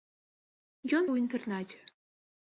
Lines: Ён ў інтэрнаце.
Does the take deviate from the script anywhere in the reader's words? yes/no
no